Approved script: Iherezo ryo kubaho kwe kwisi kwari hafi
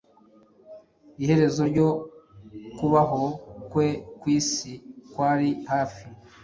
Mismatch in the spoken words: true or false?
false